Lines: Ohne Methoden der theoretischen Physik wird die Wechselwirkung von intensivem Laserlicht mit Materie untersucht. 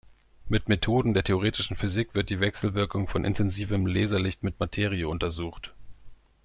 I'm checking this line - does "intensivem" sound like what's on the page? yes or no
yes